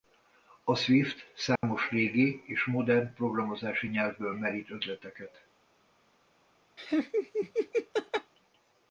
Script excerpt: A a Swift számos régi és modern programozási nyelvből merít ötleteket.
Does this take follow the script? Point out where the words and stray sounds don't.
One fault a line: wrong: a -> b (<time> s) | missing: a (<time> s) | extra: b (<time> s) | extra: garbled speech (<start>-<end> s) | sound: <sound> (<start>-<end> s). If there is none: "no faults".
missing: a (0.8 s)
sound: dropout (1.6-1.6 s)
sound: laugh (6.8-8.3 s)